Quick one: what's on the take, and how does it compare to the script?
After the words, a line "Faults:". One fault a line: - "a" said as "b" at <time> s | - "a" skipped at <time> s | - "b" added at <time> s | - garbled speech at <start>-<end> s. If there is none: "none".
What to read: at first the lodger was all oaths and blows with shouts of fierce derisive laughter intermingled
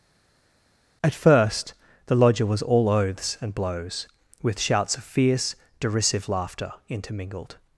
at first the lodger was all oaths and blows with shouts of fierce derisive laughter intermingled
Faults:
none